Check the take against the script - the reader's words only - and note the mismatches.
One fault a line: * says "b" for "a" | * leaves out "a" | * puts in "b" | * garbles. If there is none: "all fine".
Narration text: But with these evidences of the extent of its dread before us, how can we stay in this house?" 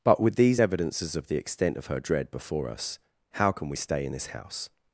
* says "her" for "its"